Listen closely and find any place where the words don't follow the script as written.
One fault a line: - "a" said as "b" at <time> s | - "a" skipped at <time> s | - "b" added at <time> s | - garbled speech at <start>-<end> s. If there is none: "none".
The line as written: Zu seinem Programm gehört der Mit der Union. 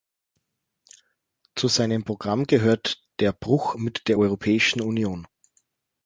- "Bruch" added at 3.3 s
- "Europäischen" added at 4.2 s